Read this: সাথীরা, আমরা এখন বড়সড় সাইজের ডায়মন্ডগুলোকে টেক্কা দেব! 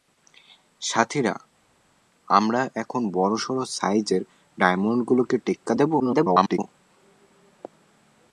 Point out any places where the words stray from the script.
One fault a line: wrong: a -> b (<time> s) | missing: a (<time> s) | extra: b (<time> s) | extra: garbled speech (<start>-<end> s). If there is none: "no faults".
extra: garbled speech (6.0-6.6 s)